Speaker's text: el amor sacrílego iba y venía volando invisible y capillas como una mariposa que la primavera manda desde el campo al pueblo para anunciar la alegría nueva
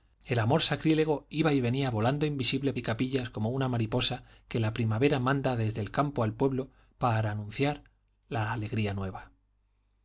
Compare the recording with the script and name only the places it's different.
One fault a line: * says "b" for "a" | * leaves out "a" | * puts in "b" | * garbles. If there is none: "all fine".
all fine